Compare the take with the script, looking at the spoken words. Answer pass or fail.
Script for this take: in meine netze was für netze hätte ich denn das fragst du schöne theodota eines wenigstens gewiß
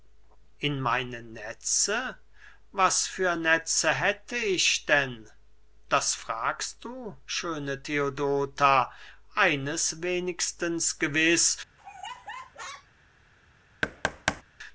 pass